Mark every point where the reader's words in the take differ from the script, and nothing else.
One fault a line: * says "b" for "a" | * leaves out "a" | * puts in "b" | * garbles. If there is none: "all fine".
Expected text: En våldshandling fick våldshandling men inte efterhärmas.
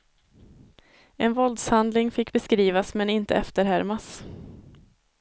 * says "beskrivas" for "våldshandling"